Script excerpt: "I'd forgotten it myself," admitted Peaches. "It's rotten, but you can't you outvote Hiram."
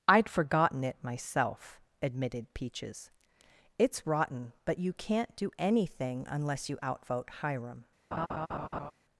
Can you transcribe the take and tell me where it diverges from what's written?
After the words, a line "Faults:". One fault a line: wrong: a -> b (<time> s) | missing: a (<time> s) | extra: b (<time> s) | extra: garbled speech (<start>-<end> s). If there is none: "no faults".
"I'd forgotten it myself," admitted Peaches. "It's rotten, but you can't do anything unless you outvote Hiram."
Faults:
extra: do anything unless (5.3 s)